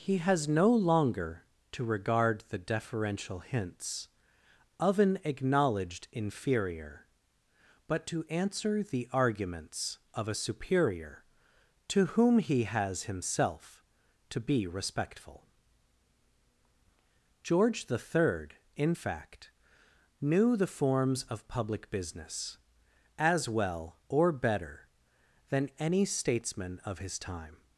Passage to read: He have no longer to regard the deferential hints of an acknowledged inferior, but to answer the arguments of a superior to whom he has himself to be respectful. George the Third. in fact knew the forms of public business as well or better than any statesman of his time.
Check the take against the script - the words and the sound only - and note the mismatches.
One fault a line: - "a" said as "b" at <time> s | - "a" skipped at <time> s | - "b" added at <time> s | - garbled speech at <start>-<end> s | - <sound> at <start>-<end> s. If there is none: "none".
- "have" said as "has" at 0.2 s